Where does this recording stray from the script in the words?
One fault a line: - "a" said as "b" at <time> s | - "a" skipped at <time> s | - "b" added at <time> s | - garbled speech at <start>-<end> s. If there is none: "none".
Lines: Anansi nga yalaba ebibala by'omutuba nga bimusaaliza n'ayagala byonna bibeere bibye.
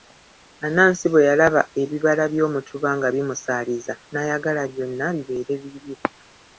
- "nga" said as "bwe" at 1.1 s